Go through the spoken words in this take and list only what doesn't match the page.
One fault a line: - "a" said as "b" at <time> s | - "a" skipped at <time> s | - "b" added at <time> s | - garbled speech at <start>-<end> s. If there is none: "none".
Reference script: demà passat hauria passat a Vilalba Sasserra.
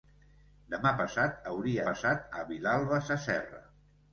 none